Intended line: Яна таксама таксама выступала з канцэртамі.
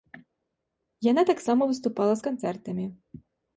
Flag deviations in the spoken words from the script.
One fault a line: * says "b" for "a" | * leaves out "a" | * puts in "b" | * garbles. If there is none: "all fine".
* leaves out "таксама"